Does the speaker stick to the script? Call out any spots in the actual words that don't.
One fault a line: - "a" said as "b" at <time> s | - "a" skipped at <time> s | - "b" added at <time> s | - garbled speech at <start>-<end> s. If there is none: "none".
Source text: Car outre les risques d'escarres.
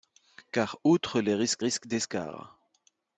- "risques" added at 1.6 s